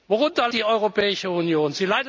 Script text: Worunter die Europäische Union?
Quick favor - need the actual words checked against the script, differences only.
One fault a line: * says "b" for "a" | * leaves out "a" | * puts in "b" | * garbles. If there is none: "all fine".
all fine